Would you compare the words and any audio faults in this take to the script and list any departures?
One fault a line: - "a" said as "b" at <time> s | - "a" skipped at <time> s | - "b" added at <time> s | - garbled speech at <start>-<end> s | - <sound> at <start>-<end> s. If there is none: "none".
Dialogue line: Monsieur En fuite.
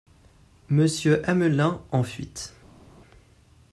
- "Amelin" added at 1.3 s